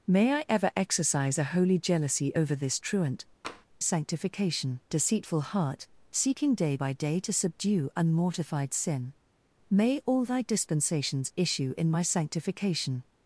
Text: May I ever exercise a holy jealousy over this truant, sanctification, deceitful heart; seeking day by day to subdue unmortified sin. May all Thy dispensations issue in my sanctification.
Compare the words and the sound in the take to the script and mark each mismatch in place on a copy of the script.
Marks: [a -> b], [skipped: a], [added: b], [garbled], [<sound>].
May I ever exercise a holy jealousy over this truant, [tap] sanctification, deceitful heart; seeking day by day to subdue unmortified sin. May all Thy dispensations issue in my sanctification.